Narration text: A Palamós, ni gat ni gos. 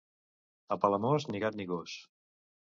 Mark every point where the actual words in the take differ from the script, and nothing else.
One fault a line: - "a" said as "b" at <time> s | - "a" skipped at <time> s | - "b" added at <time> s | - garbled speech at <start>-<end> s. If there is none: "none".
none